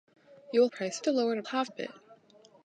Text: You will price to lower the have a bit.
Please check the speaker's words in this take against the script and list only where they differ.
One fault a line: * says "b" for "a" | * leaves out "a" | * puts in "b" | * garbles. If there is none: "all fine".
all fine